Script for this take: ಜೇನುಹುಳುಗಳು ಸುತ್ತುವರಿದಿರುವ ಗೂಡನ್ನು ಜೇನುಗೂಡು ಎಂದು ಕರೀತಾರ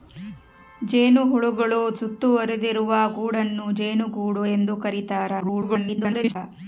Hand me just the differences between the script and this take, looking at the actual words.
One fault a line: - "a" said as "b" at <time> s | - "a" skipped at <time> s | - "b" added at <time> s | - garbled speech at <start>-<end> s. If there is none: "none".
- garbled speech at 5.4-6.4 s